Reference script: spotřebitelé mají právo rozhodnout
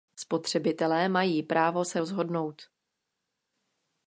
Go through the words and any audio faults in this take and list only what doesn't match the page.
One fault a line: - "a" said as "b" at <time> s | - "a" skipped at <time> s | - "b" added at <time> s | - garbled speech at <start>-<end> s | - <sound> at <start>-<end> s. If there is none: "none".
- "se" added at 1.9 s